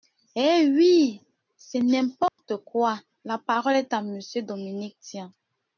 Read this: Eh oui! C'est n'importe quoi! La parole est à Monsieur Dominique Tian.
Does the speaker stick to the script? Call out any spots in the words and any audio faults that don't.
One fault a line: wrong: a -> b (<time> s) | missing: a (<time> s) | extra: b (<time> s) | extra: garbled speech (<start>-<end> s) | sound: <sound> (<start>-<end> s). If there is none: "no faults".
sound: dropout (2.3-2.4 s)